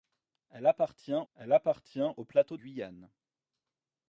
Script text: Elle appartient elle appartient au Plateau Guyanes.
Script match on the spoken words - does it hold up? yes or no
yes